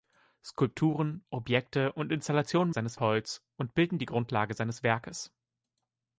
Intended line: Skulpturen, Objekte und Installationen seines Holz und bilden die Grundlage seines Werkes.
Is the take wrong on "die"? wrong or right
right